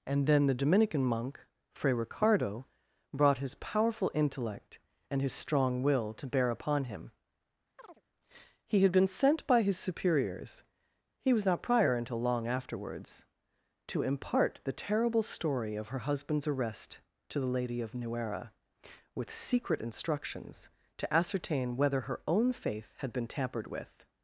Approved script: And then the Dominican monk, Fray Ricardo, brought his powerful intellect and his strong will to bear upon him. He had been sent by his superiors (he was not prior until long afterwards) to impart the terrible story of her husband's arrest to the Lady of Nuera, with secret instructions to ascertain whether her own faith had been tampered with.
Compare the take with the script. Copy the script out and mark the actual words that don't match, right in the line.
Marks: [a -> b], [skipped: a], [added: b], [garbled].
And then the Dominican monk, Fray Ricardo, brought his powerful intellect and his strong will to bear upon him. He had been sent by his superiors (he was not prior until long afterwards) to impart the terrible story of her husband's arrest to the Lady of Nuera, with secret instructions to ascertain whether her own faith had been tampered with.